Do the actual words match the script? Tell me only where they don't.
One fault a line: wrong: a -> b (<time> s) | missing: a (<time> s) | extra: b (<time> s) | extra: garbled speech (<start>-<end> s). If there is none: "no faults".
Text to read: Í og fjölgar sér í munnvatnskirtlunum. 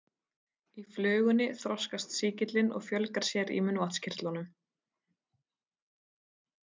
extra: flugunni þroskast sýkillinn (0.9 s)